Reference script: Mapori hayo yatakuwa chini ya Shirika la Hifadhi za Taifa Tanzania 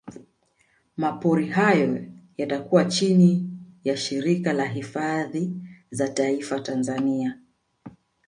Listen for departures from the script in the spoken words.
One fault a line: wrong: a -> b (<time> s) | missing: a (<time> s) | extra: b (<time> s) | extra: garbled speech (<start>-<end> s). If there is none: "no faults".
no faults